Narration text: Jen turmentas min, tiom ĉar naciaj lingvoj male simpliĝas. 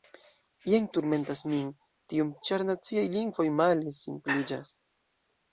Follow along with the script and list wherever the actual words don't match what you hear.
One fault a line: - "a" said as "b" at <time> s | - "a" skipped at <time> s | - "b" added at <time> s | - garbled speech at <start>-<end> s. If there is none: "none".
none